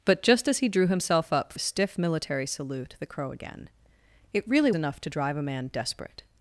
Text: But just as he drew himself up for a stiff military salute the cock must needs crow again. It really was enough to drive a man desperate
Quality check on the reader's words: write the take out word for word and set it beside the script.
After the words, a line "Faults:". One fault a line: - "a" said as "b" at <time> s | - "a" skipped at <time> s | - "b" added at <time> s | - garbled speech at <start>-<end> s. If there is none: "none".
But just as he drew himself up a stiff military salute the crow again. It really enough to drive a man desperate
Faults:
- "for" skipped at 1.5 s
- "cock must needs" skipped at 3.1 s
- "was" skipped at 4.7 s